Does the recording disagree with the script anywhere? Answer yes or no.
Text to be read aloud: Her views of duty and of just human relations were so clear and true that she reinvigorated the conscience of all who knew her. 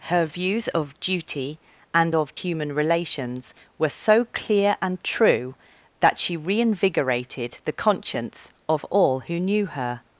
yes